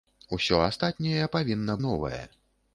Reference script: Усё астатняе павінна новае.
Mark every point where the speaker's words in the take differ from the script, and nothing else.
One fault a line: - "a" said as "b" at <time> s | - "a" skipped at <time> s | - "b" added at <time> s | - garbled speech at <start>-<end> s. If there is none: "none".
none